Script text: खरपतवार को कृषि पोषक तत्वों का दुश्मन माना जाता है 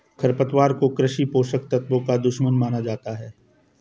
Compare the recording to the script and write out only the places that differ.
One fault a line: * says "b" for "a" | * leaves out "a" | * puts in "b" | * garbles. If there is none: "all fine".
all fine